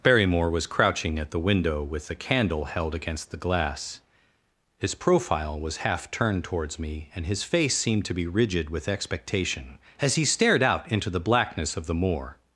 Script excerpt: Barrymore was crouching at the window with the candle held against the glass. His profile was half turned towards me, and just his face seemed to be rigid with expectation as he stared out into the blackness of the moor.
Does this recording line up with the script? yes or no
no